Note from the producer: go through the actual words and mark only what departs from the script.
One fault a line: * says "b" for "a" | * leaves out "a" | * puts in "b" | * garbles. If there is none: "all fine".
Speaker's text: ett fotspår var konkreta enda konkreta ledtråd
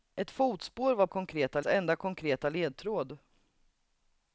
all fine